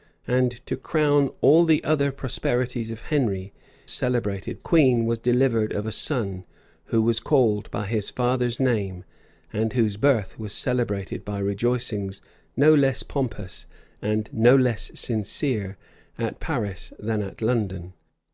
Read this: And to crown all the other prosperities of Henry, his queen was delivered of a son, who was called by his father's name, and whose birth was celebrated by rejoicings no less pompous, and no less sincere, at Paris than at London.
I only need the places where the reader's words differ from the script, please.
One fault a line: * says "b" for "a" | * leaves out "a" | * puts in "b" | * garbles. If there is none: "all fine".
* says "celebrated" for "his"